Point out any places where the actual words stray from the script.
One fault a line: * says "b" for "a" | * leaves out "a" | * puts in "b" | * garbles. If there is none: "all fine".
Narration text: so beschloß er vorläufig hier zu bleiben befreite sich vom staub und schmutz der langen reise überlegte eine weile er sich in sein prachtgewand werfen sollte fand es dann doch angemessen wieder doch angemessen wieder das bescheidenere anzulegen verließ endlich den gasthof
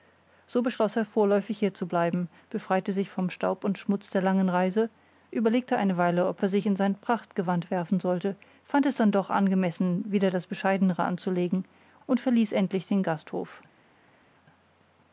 * puts in "ob"
* leaves out "doch angemessen wieder"
* puts in "und"